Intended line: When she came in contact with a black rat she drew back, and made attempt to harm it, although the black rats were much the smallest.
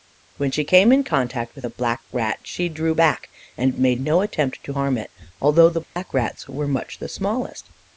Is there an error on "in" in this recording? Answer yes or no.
no